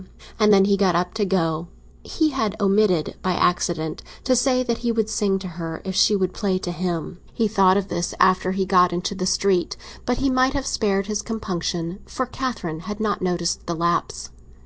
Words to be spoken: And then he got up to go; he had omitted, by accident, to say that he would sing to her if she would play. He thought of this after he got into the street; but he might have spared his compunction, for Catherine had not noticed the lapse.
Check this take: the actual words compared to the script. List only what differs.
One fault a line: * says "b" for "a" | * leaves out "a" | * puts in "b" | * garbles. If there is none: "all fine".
* puts in "to him"